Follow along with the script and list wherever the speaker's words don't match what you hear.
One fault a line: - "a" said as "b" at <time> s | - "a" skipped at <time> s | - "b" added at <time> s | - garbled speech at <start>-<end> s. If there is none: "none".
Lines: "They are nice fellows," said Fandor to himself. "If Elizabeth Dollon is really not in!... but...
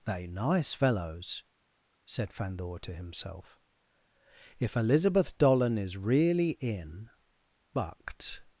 - "are" skipped at 0.3 s
- "not" skipped at 6.5 s